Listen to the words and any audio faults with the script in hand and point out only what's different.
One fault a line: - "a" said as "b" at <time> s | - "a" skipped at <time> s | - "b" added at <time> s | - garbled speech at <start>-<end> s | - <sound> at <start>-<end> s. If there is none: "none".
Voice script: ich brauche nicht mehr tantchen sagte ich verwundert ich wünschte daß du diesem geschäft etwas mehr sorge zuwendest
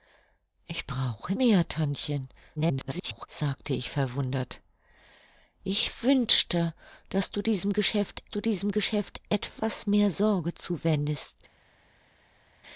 - "nicht" skipped at 1.3 s
- garbled speech at 2.6-3.3 s
- "du diesem geschäft" added at 8.3 s